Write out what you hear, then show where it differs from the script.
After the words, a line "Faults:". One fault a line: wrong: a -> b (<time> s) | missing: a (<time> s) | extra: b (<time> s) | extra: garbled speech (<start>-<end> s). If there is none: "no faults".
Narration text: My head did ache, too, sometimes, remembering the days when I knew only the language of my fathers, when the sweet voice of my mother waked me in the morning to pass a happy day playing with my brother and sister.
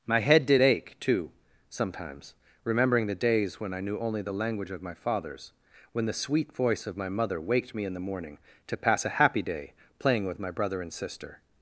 My head did ache, too, sometimes, remembering the days when I knew only the language of my fathers, when the sweet voice of my mother waked me in the morning to pass a happy day playing with my brother and sister.
Faults:
no faults